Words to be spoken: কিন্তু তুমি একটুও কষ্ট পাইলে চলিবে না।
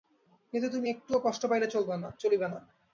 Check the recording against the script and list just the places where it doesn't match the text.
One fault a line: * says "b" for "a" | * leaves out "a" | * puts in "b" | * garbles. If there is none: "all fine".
all fine